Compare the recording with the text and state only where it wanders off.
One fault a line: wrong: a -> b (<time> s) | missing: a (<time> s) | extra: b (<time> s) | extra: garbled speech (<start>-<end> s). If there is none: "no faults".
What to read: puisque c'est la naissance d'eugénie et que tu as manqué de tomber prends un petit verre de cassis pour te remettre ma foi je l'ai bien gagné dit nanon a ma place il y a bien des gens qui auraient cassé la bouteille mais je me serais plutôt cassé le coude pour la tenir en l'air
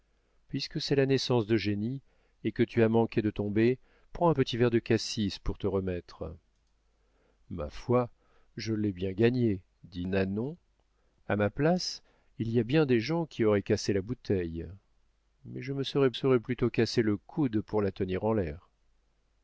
extra: serais (16.1 s)